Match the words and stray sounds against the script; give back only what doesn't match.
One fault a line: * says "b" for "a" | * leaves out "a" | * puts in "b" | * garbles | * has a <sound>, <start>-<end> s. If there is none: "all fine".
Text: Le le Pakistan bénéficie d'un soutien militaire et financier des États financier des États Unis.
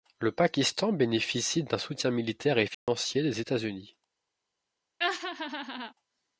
* leaves out "le"
* has a dropout, 2.7-2.9 s
* leaves out "financier des États"
* has a laugh, 5.0-5.9 s